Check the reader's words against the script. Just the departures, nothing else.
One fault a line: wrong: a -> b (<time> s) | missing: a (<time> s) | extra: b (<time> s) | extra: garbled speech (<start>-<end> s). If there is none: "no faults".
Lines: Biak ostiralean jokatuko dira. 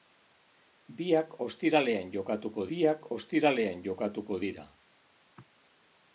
extra: biak ostiralean jokatuko (2.7 s)